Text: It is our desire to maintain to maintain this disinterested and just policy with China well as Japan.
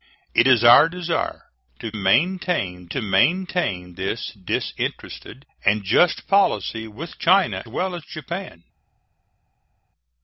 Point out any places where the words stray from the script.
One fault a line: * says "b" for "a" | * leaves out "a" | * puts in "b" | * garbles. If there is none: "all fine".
all fine